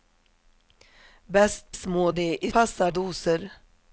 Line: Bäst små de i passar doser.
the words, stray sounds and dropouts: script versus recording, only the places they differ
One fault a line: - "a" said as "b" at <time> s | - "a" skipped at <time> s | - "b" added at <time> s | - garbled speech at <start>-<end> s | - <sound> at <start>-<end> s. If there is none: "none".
none